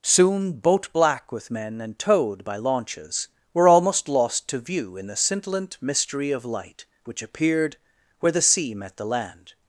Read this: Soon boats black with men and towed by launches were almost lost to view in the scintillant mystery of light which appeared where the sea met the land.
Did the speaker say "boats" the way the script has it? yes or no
no